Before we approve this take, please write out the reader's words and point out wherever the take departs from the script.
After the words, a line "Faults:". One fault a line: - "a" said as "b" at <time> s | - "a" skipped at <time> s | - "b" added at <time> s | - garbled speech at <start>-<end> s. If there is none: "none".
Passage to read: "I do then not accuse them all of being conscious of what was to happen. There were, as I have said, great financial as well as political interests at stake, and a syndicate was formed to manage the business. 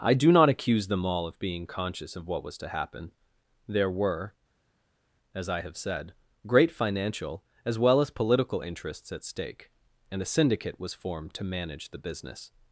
"I do not accuse them all of being conscious of what was to happen. There were, as I have said, great financial as well as political interests at stake, and a syndicate was formed to manage the business.
Faults:
- "then" skipped at 0.3 s